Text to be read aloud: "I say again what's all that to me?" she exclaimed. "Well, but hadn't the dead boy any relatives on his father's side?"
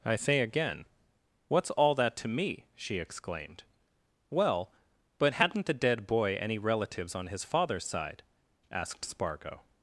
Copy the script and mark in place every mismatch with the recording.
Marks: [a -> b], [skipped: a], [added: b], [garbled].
"I say again what's all that to me?" she exclaimed. "Well, but hadn't the dead boy any relatives on his father's side?" [added: asked Spargo]